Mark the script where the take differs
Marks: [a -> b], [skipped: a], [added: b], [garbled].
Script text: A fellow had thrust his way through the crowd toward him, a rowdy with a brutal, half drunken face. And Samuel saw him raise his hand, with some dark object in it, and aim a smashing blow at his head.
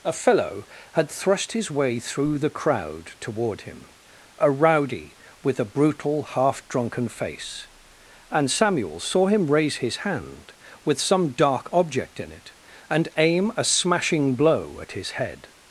A fellow had thrust his way through the crowd toward him, a rowdy with a brutal, half drunken face. And Samuel saw him raise his hand, with some dark object in it, and aim a smashing blow at his head.